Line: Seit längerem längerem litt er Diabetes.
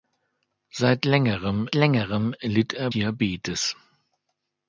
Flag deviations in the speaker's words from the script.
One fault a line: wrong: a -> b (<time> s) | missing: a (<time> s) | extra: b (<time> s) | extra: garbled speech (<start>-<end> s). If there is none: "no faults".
no faults